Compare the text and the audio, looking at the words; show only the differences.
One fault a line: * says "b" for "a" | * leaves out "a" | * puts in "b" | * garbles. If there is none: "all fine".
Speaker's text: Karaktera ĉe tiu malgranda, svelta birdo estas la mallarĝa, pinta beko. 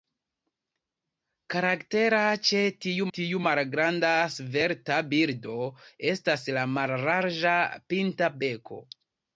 * puts in "tiu"